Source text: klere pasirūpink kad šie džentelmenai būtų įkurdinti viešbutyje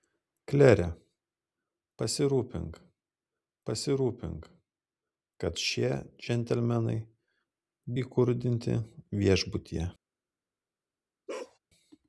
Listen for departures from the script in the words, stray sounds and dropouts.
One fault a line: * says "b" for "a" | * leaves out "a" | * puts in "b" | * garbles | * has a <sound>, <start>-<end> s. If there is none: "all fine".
* puts in "pasirūpink"
* leaves out "būtų"
* has a bark, 11.3-11.6 s